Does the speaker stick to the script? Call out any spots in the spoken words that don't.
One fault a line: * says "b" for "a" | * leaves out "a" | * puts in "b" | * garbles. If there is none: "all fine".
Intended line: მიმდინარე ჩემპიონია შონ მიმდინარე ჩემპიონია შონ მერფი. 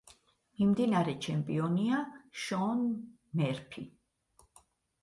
* leaves out "მიმდინარე ჩემპიონია შონ"